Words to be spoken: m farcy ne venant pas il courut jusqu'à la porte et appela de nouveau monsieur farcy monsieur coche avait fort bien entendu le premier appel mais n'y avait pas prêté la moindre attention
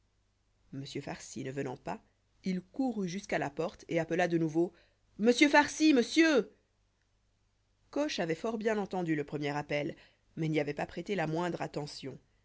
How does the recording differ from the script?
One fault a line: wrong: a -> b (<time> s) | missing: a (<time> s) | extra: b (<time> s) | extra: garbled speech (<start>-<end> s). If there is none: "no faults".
no faults